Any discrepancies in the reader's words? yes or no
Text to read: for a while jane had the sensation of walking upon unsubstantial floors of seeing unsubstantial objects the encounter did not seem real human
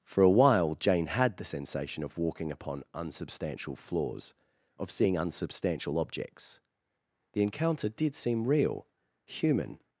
yes